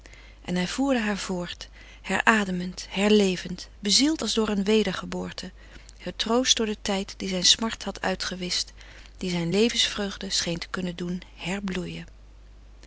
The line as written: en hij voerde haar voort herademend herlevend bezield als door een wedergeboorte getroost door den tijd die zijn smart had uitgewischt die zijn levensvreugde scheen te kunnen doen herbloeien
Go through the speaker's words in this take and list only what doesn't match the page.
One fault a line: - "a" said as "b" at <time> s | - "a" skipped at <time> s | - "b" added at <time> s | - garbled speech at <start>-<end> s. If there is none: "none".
none